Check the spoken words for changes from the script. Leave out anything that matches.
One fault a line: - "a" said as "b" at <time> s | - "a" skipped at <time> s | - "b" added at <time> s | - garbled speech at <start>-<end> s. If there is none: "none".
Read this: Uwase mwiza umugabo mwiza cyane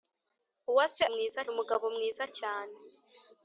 none